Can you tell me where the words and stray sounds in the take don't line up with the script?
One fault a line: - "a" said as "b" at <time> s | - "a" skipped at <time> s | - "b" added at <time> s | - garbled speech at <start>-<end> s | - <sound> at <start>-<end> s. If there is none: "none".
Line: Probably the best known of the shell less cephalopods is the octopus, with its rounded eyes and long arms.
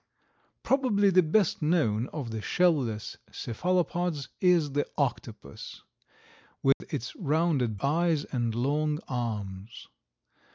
- dropout at 6.7-6.8 s